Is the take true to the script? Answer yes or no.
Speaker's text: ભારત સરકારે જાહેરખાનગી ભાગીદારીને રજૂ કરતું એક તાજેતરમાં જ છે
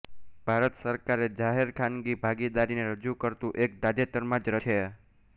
yes